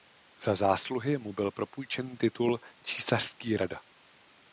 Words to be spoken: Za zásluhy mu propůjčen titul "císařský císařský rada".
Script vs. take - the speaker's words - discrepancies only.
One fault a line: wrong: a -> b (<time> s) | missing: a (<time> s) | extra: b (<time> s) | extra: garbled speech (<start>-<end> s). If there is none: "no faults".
extra: byl (1.3 s)
missing: císařský (3.6 s)